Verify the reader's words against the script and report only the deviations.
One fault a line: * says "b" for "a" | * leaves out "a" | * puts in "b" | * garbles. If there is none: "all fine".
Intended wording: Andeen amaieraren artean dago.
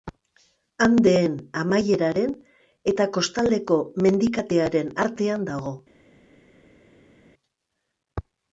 * puts in "eta Kostaldeko mendikatearen"